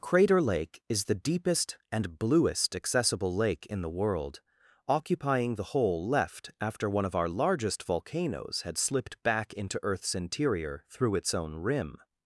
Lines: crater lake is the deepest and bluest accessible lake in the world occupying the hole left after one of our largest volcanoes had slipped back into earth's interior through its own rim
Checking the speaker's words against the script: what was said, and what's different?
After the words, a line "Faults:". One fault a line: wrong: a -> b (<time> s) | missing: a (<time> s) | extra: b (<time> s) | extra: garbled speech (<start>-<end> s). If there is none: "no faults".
crater lake is the deepest and bluest accessible lake in the world occupying the hole left after one of our largest volcanoes had slipped back into earth's interior through its own rim
Faults:
no faults